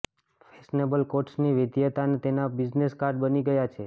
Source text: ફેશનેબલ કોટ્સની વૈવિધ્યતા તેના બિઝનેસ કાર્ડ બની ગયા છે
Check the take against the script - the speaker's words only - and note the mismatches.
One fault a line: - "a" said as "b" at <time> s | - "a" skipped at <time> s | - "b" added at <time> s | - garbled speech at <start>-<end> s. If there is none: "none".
none